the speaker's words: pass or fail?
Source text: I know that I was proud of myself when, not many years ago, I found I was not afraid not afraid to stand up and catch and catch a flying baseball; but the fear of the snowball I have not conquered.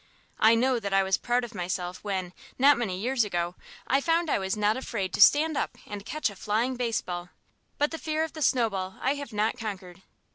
fail